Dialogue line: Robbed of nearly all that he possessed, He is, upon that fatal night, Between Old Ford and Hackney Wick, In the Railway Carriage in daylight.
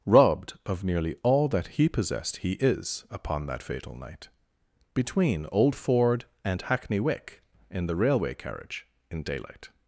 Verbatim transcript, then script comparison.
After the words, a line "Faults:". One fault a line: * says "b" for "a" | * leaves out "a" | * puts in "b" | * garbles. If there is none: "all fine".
Robbed of nearly all that he possessed, He is, upon that fatal night, Between Old Ford and Hackney Wick, In the Railway Carriage in daylight.
Faults:
all fine